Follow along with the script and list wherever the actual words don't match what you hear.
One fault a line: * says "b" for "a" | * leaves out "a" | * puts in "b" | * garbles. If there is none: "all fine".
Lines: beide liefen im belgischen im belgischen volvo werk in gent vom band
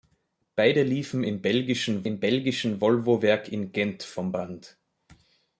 all fine